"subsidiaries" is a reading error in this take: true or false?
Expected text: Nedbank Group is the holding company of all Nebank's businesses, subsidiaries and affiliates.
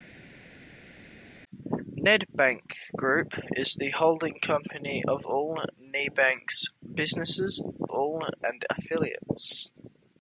true